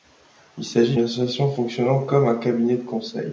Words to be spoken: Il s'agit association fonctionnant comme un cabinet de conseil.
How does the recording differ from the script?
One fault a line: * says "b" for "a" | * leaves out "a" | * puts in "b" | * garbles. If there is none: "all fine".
all fine